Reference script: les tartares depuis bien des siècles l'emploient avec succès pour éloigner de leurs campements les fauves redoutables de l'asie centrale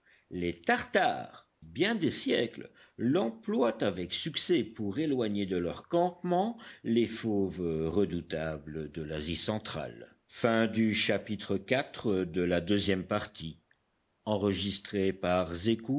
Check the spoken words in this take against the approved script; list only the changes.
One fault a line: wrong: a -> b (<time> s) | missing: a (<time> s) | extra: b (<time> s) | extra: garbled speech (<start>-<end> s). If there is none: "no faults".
missing: depuis (1.5 s)